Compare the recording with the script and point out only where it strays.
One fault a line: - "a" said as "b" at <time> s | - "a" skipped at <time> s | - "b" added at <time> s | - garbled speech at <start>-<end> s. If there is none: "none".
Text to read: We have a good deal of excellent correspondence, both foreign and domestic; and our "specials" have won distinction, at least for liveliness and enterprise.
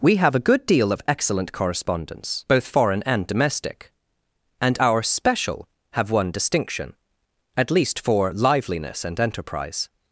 - "specials" said as "special" at 5.0 s